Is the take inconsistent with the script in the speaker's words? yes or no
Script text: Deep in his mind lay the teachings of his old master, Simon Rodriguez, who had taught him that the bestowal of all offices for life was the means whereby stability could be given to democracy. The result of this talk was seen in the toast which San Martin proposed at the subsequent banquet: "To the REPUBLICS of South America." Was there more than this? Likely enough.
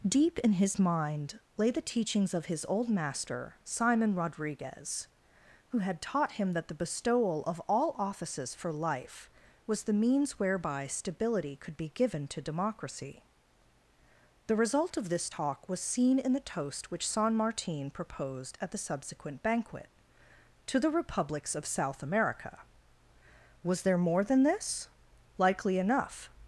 no